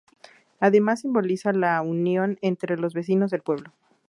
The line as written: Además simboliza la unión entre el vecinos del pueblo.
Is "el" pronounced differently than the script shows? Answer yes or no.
yes